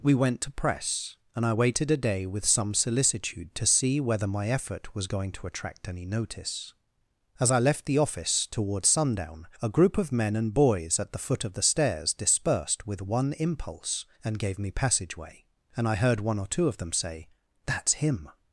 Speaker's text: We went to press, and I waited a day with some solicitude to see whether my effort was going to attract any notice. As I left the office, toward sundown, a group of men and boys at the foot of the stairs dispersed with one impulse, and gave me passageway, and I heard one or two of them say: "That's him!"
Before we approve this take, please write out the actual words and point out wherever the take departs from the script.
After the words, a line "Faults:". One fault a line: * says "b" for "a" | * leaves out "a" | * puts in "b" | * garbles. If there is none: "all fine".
We went to press, and I waited a day with some solicitude to see whether my effort was going to attract any notice. As I left the office, toward sundown, a group of men and boys at the foot of the stairs dispersed with one impulse, and gave me passageway, and I heard one or two of them say: "That's him!"
Faults:
all fine